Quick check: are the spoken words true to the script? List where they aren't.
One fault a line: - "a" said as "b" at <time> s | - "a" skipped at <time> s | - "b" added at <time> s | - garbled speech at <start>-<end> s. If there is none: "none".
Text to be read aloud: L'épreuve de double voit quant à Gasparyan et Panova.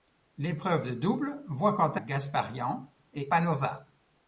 none